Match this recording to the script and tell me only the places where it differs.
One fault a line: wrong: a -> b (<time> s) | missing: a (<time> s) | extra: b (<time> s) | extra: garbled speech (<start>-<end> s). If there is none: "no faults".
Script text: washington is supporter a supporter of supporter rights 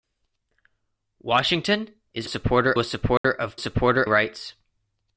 no faults